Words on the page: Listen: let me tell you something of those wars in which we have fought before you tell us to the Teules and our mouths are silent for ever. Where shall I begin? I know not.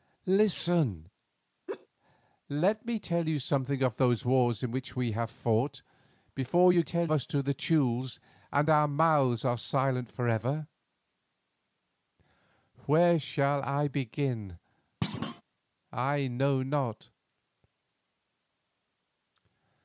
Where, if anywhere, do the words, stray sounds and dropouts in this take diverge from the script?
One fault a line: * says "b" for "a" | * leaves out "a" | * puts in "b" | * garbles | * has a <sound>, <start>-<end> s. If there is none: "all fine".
* has a laugh, 1.7-1.9 s
* has a thud, 15.0-15.4 s